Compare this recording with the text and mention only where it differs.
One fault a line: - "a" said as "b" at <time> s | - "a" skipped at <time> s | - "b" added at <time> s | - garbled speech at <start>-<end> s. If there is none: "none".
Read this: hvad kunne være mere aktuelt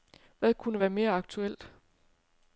none